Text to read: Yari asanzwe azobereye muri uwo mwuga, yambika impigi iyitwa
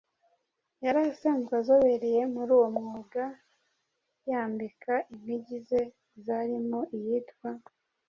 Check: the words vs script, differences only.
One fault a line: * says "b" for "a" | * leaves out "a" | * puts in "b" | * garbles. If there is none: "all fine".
* puts in "ze zarimo"